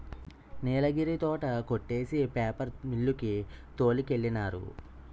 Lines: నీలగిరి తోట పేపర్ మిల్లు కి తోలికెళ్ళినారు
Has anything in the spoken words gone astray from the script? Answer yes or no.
yes